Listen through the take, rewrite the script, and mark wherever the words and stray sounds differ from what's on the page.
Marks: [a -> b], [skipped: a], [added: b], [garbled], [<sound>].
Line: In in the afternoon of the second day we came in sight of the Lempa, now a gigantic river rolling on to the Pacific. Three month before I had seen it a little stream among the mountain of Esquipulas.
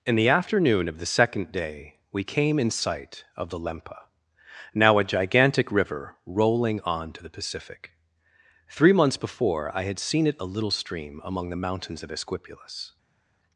In [skipped: in] the afternoon of the second day we came in sight of the Lempa, now a gigantic river rolling on to the Pacific. Three [month -> months] before I had seen it a little stream among the [mountain -> mountains] of Esquipulas.